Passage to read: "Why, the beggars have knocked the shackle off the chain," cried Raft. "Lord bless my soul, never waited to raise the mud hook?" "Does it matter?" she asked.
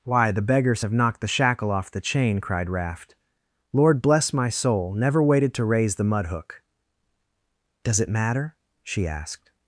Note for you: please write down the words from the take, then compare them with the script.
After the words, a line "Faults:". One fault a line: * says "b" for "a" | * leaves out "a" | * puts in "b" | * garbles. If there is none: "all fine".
"Why, the beggars have knocked the shackle off the chain," cried Raft. "Lord bless my soul, never waited to raise the mud hook?" "Does it matter?" she asked.
Faults:
all fine